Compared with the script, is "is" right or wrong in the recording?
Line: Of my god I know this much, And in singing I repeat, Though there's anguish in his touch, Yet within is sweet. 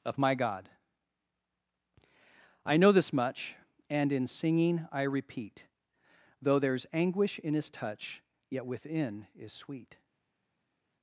right